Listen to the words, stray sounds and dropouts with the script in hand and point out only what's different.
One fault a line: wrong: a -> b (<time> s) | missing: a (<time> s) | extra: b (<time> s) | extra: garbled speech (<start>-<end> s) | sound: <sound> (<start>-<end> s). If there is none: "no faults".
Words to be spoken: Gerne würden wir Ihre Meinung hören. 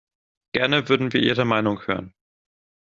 no faults